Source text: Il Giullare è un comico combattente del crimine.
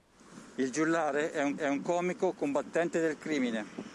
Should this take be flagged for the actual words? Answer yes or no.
yes